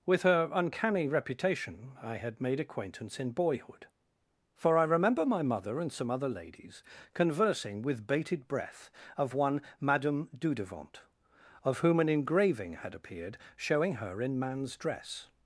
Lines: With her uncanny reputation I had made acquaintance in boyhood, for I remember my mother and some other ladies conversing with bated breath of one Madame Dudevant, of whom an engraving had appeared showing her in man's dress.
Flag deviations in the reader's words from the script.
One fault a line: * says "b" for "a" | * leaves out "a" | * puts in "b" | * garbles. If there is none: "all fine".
all fine